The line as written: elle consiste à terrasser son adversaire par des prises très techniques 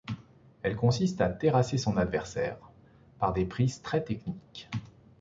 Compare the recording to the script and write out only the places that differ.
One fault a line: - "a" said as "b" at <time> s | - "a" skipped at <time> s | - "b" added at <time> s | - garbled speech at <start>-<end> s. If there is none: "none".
none